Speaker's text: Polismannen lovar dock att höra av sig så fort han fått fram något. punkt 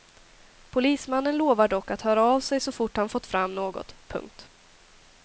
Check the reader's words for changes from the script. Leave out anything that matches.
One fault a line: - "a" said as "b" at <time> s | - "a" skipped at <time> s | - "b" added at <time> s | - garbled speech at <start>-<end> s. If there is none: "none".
none